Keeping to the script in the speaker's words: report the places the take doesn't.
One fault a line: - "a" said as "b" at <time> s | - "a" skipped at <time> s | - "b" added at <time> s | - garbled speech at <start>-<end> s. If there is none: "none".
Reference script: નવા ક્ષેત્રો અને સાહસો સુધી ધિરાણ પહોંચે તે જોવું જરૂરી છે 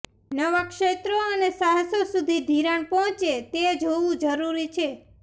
none